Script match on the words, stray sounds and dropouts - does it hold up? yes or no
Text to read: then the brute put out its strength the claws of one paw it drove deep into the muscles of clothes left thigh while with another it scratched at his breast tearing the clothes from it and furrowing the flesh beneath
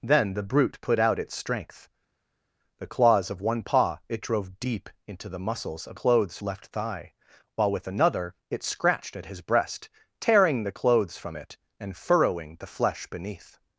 yes